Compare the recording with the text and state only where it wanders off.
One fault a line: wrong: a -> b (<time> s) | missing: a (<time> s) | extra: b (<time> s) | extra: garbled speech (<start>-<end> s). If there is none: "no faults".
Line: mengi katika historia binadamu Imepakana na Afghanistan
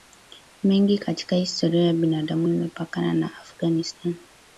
extra: ya (1.8 s)